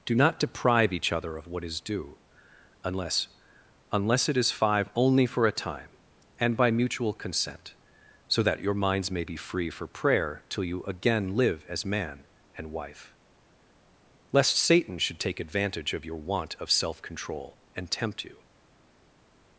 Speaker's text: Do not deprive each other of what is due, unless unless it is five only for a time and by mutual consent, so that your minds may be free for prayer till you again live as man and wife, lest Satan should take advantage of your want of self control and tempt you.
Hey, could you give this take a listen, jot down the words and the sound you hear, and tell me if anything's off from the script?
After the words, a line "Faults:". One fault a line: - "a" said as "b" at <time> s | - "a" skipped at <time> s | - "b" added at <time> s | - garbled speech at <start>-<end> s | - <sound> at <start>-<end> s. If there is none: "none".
Do not deprive each other of what is due, unless unless it is five only for a time and by mutual consent, so that your minds may be free for prayer till you again live as man and wife, lest Satan should take advantage of your want of self control and tempt you.
Faults:
none